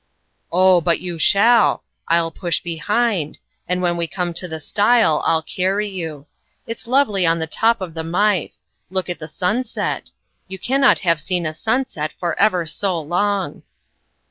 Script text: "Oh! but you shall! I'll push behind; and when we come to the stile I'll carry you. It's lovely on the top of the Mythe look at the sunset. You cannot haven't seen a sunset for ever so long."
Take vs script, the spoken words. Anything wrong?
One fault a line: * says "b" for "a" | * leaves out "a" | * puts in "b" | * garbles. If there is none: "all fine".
* says "have" for "haven't"